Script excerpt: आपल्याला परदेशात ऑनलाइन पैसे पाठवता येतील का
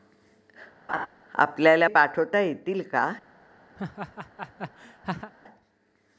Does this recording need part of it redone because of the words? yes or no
yes